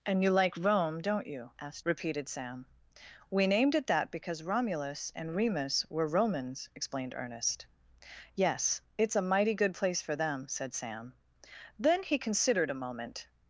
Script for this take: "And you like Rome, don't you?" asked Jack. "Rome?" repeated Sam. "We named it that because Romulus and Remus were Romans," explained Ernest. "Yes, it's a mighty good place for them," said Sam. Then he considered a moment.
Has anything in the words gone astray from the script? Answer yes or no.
yes